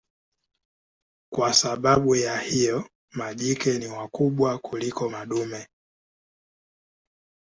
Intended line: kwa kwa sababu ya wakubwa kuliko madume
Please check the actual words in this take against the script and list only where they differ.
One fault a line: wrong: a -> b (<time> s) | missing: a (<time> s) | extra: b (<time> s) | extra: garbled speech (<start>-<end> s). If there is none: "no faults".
missing: kwa (1.5 s)
extra: hiyo majike ni (2.4 s)